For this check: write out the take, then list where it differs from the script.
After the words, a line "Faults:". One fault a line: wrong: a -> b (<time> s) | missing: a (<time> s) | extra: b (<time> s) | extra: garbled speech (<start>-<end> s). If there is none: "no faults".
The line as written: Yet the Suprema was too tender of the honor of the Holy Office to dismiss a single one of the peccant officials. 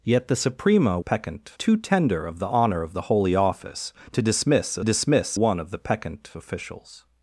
Yet the Suprema peccant too tender of the honor of the Holy Office to dismiss a dismiss one of the peccant officials.
Faults:
wrong: was -> peccant (1.0 s)
wrong: single -> dismiss (4.8 s)